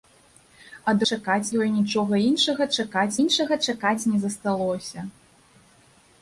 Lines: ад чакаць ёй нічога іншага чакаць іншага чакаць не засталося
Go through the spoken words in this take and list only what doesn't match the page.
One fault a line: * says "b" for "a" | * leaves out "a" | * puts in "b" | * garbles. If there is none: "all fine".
all fine